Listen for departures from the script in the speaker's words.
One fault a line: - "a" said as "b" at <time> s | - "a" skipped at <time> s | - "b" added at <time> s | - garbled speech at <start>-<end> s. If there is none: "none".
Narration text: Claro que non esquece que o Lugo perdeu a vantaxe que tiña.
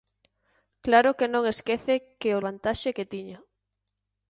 - "Lugo perdeu a" skipped at 2.4 s